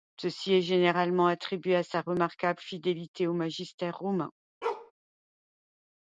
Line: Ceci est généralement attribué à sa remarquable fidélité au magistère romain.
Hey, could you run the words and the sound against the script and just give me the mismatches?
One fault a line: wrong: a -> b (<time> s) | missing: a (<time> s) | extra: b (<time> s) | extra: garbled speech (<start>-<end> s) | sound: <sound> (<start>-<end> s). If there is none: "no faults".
sound: bark (4.6-4.9 s)